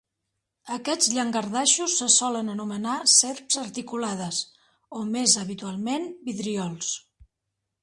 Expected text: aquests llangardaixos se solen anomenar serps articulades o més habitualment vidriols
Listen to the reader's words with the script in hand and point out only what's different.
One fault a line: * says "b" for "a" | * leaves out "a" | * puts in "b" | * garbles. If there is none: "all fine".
all fine